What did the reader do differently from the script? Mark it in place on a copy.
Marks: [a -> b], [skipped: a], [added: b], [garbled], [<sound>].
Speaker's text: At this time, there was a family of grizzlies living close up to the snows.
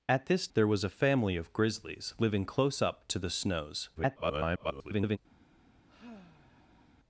At this [skipped: time,] there was a family of grizzlies living close up to the snows. [garbled] [sigh]